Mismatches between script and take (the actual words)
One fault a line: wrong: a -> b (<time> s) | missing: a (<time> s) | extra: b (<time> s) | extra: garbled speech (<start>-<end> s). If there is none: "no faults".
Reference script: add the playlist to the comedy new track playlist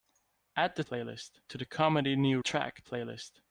no faults